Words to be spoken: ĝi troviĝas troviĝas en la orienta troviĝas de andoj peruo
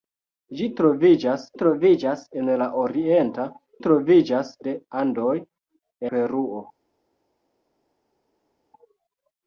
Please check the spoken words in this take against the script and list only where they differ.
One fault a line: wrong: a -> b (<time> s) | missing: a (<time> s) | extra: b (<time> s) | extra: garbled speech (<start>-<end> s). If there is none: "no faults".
no faults